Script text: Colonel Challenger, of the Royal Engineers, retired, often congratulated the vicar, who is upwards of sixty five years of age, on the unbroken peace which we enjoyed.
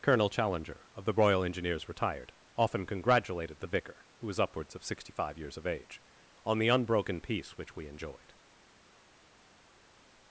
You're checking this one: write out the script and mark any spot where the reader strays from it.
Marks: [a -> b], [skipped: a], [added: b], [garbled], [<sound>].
Colonel Challenger, of the Royal Engineers, retired, often congratulated the vicar, who [is -> was] upwards of sixty five years of age, on the unbroken peace which we enjoyed.